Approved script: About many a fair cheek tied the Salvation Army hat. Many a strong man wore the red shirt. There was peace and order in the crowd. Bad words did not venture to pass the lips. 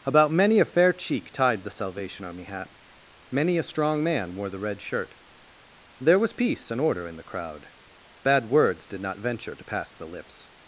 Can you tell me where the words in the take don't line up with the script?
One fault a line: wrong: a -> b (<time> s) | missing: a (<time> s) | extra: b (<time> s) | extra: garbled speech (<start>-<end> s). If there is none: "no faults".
no faults